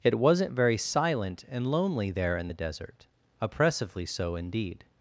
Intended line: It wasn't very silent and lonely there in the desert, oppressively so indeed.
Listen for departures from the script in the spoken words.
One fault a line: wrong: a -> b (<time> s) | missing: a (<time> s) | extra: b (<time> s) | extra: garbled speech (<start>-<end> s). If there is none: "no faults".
no faults